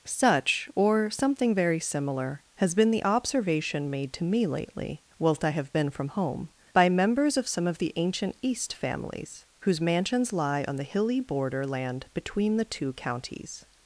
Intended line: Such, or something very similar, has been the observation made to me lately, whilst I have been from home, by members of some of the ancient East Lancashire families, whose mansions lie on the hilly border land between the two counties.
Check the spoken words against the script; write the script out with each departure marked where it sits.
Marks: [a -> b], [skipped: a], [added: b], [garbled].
Such, or something very similar, has been the observation made to me lately, whilst I have been from home, by members of some of the ancient East [skipped: Lancashire] families, whose mansions lie on the hilly border land between the two counties.